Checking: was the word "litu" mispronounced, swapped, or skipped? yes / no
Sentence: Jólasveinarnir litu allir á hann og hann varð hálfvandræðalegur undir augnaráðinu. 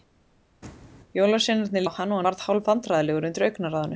yes